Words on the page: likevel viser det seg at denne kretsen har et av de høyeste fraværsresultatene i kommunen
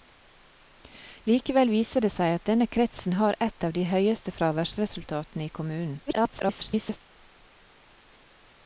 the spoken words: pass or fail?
fail